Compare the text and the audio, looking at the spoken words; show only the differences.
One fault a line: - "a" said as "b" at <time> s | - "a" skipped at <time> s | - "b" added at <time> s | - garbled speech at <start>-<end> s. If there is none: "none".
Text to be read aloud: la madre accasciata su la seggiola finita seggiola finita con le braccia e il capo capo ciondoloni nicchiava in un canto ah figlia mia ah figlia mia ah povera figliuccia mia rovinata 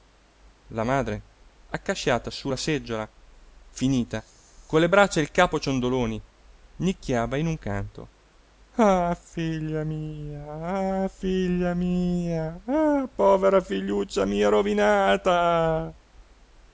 - "seggiola finita" skipped at 4.2 s
- "capo" skipped at 5.6 s